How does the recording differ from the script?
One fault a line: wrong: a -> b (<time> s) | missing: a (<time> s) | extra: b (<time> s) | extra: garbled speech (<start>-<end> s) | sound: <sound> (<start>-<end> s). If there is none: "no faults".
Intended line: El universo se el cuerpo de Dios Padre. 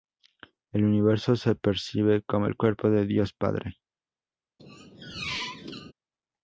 extra: percibe como (1.5 s)
sound: squeak (4.6-5.9 s)